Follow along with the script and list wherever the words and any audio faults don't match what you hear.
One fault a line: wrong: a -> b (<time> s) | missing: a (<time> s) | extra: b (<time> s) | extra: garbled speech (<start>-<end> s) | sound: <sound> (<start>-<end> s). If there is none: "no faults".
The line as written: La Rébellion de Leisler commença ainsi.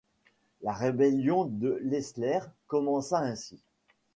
no faults